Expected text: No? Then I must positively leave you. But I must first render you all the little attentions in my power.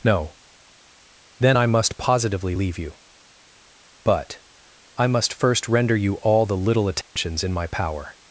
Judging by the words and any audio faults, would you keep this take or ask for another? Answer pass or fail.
fail